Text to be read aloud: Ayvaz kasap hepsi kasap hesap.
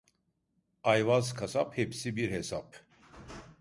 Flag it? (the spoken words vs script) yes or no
yes